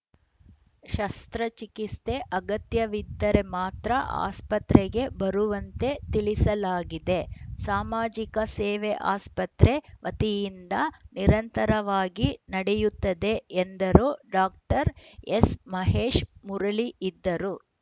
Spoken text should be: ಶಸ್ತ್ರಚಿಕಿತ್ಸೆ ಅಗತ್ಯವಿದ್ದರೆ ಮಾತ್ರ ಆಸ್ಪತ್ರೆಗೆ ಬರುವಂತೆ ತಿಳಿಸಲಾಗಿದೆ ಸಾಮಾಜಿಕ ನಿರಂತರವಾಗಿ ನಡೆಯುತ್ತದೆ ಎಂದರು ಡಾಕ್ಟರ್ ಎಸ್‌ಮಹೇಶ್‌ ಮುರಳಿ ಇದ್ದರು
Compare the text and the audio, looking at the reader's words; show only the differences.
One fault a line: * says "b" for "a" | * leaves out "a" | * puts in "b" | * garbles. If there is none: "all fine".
* puts in "ಸೇವೆ ಆಸ್ಪತ್ರೆ ವತಿಯಿಂದ"